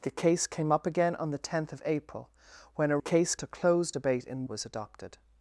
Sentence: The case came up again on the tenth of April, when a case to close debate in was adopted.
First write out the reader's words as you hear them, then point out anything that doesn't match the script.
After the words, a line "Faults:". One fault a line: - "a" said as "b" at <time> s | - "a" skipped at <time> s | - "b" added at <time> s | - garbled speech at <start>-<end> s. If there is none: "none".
The case came up again on the tenth of April, when a case to close debate in was adopted.
Faults:
none